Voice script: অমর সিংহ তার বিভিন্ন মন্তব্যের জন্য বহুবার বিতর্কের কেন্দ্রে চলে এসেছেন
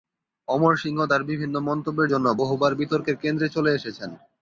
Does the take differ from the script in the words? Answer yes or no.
no